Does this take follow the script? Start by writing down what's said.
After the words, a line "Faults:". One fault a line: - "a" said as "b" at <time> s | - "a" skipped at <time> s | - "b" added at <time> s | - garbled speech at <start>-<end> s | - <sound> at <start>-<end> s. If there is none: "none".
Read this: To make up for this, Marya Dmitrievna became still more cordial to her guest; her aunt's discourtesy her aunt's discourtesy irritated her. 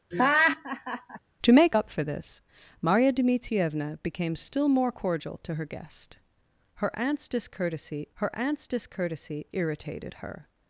To make up for this, Marya Dmitrievna became still more cordial to her guest; her aunt's discourtesy her aunt's discourtesy irritated her.
Faults:
- laugh at 0.1-1.2 s